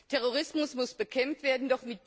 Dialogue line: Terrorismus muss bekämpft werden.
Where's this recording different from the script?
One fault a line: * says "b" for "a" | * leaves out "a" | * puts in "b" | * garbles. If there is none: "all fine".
all fine